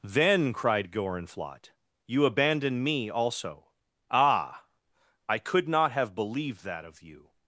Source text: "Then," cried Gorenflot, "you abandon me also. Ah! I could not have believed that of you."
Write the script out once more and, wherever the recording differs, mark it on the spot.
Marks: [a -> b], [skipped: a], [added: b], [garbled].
"Then," cried Gorenflot, "you abandon me also. Ah! I could not have believed that of you."